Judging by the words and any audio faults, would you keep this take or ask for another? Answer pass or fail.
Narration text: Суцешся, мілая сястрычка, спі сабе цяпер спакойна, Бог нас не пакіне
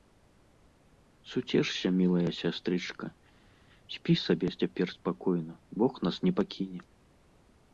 pass